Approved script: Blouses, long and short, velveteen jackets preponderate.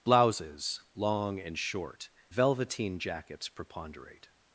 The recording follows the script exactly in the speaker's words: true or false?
true